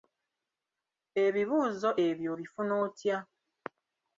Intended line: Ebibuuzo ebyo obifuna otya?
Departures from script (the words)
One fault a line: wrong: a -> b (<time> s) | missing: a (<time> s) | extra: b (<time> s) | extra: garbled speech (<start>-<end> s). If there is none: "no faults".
no faults